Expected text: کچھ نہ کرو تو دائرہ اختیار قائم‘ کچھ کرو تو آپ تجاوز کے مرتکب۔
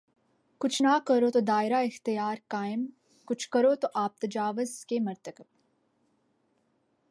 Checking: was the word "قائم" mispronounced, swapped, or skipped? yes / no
no